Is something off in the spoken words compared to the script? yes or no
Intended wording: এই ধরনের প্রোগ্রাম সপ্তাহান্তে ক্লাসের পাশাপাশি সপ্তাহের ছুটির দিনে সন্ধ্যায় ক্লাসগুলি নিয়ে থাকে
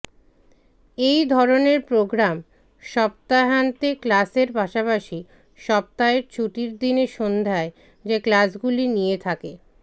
yes